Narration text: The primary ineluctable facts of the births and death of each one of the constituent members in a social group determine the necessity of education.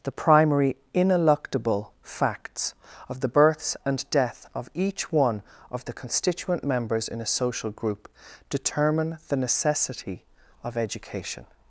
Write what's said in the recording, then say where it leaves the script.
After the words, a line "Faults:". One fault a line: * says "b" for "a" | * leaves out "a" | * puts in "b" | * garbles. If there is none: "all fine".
The primary ineluctable facts of the births and death of each one of the constituent members in a social group determine the necessity of education.
Faults:
all fine